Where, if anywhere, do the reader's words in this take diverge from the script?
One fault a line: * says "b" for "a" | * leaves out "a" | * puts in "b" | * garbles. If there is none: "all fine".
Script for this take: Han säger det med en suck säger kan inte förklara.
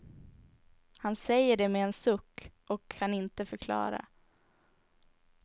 * says "och" for "säger"